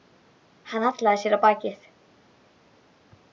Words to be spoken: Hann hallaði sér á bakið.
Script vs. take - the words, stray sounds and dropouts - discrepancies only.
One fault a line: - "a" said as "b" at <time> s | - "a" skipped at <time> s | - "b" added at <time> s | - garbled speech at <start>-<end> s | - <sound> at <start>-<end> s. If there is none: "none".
none